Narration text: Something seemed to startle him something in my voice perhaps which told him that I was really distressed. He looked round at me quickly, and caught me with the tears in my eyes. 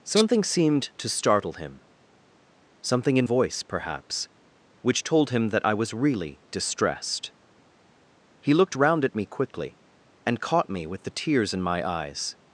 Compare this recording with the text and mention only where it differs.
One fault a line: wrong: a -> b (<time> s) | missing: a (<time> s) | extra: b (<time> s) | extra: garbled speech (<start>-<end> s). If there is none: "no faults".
missing: my (3.3 s)